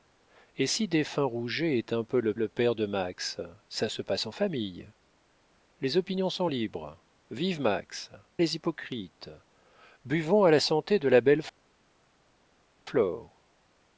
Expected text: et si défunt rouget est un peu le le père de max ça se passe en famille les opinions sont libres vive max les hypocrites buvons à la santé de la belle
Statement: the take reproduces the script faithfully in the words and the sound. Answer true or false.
true